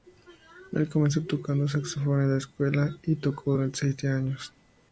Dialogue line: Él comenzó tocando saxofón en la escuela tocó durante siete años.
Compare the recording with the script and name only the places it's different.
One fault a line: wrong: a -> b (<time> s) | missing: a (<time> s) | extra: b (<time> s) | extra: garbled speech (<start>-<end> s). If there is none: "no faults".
extra: y (3.0 s)